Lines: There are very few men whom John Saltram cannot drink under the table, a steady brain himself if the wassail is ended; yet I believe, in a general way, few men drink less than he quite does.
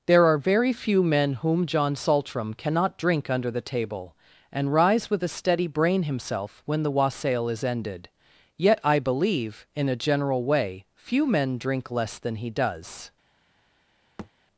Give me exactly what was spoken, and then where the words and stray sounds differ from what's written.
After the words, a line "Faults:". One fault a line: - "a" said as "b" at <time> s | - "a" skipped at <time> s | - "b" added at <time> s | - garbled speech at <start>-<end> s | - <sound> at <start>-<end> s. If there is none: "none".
There are very few men whom John Saltram cannot drink under the table, and rise with a steady brain himself when the wassail is ended; yet I believe, in a general way, few men drink less than he does.
Faults:
- "and rise with" added at 4.5 s
- "if" said as "when" at 6.6 s
- "quite" skipped at 12.5 s
- thud at 14.2-14.3 s